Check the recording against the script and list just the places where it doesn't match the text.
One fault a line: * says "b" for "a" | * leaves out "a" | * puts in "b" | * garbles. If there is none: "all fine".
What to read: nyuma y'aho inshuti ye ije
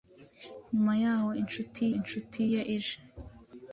* puts in "inshuti"